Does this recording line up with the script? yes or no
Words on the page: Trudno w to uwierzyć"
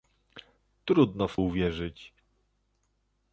no